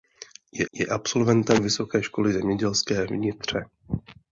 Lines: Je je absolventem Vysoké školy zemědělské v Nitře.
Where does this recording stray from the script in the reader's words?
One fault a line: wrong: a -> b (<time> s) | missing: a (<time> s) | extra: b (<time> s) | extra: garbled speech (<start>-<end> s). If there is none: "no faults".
no faults